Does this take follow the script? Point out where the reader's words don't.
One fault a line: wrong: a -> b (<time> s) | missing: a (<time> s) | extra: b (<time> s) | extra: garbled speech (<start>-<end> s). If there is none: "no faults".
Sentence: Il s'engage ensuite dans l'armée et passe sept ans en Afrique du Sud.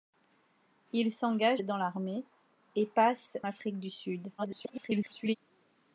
missing: ensuite (1.6 s)
missing: sept ans en (3.4 s)
extra: garbled speech (4.4-5.4 s)